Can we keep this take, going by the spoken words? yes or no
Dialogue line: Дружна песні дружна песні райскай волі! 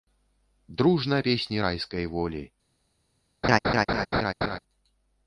no